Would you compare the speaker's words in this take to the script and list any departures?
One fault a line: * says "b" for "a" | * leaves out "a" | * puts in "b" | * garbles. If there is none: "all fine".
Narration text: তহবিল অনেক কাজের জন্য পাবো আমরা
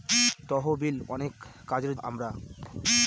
* leaves out "জন্য পাবো"